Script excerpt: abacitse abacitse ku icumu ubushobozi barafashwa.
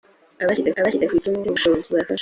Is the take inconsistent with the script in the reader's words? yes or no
no